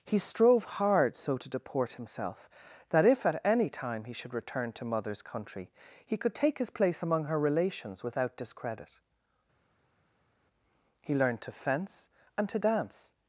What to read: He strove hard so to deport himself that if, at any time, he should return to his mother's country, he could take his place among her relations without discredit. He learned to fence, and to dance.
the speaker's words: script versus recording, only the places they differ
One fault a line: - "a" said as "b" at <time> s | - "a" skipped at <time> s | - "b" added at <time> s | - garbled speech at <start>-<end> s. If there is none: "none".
- "his" skipped at 4.8 s